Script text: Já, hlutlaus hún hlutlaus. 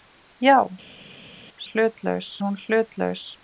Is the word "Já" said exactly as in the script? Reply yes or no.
yes